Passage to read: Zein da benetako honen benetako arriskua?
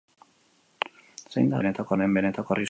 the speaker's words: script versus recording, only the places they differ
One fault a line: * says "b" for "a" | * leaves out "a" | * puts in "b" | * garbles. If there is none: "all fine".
all fine